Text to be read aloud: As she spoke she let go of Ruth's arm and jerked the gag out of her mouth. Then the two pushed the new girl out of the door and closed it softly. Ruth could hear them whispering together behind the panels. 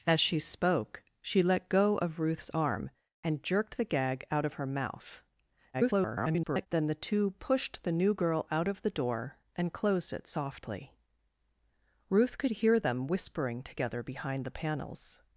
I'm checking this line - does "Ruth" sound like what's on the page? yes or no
yes